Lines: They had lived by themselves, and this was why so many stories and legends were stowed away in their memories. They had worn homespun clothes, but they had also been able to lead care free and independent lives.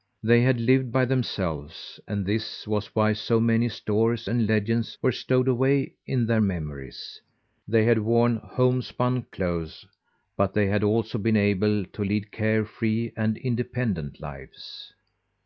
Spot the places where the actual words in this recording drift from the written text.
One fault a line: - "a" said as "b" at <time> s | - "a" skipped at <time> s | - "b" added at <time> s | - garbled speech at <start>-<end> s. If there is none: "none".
none